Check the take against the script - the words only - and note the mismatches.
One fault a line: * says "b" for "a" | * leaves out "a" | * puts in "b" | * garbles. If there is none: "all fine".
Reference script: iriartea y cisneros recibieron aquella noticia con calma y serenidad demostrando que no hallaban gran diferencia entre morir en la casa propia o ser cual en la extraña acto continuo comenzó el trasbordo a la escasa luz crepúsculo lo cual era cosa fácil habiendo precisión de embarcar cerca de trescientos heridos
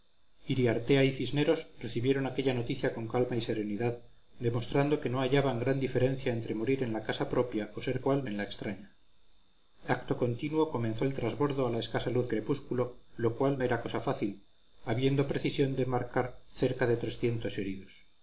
all fine